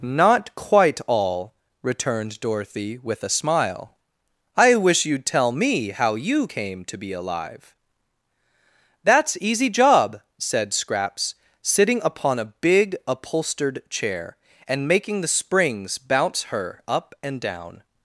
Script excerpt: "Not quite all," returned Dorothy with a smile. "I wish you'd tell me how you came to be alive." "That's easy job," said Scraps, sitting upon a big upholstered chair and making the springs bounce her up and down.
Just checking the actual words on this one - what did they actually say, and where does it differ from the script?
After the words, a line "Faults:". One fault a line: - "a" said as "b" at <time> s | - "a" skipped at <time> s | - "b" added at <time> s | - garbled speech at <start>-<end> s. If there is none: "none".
"Not quite all," returned Dorothy with a smile. "I wish you'd tell me how you came to be alive." "That's easy job," said Scraps, sitting upon a big upholstered chair and making the springs bounce her up and down.
Faults:
none